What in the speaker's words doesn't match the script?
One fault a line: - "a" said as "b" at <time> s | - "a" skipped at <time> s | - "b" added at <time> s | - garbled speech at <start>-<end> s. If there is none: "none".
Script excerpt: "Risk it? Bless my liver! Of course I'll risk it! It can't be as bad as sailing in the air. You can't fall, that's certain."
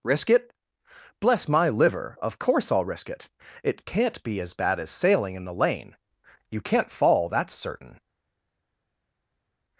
- "air" said as "lane" at 5.5 s